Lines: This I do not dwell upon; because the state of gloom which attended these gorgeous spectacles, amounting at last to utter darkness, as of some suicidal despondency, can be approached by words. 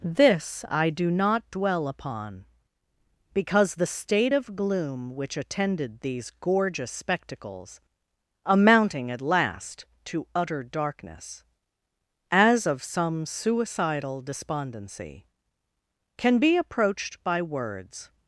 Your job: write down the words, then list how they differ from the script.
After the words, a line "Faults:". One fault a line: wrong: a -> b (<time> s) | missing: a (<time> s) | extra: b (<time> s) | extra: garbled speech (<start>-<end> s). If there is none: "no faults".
This I do not dwell upon; because the state of gloom which attended these gorgeous spectacles, amounting at last to utter darkness, as of some suicidal despondency, can be approached by words.
Faults:
no faults